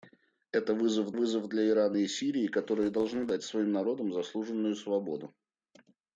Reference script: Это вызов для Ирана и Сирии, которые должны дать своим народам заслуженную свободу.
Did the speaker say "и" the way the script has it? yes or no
yes